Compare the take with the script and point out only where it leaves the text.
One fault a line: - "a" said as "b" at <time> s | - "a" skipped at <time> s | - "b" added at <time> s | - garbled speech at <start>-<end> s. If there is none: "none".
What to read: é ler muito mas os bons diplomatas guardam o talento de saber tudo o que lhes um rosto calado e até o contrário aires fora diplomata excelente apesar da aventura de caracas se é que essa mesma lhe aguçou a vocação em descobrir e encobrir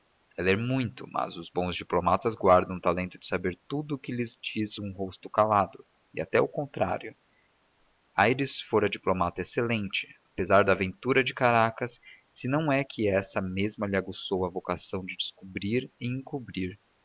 - "diz" added at 4.4 s
- "não" added at 12.5 s
- "em" said as "de" at 15.0 s